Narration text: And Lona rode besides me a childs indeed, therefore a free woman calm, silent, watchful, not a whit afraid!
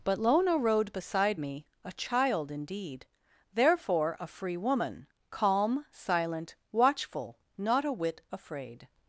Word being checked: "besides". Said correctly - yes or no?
no